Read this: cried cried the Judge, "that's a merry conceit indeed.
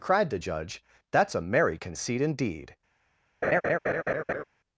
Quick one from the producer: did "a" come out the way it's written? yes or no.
yes